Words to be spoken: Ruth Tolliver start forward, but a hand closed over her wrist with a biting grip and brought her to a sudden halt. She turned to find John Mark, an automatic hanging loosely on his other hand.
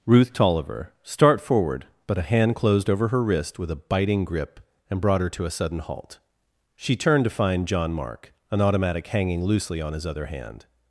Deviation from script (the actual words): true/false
false